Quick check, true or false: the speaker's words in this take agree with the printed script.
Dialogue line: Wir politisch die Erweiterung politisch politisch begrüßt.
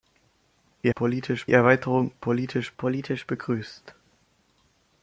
true